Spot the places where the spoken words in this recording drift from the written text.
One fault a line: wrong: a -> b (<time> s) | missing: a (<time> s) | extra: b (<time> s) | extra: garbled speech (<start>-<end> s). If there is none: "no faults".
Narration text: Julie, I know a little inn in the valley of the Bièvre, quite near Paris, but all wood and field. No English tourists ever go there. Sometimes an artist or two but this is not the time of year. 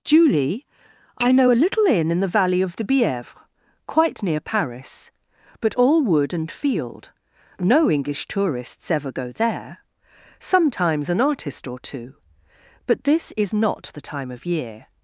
no faults